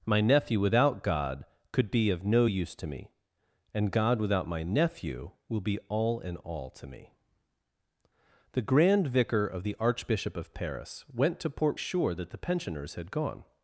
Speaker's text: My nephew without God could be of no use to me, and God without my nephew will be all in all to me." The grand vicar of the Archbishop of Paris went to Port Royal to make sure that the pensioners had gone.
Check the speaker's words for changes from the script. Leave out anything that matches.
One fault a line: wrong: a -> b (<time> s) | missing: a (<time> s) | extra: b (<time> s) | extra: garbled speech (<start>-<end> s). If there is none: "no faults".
missing: Royal to make (11.8 s)